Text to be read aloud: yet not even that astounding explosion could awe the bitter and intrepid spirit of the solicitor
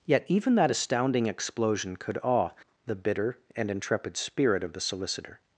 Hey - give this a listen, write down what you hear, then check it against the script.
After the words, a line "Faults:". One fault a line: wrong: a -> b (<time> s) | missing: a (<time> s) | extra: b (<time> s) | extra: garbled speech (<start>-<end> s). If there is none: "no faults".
yet even that astounding explosion could awe the bitter and intrepid spirit of the solicitor
Faults:
missing: not (0.3 s)